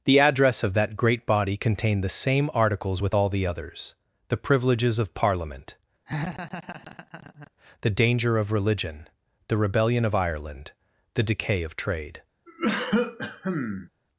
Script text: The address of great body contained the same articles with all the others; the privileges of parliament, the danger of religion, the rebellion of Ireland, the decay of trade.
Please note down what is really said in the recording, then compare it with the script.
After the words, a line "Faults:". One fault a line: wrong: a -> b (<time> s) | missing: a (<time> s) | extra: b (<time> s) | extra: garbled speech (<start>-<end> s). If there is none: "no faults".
The address of that great body contained the same articles with all the others; the privileges of parliament, the danger of religion, the rebellion of Ireland, the decay of trade.
Faults:
extra: that (0.7 s)